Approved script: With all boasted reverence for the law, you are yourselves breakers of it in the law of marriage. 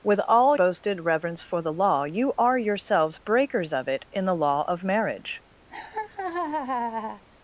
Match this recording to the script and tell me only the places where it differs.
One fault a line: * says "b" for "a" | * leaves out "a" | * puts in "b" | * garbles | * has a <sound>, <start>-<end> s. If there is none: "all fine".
* has a laugh, 5.7-7.2 s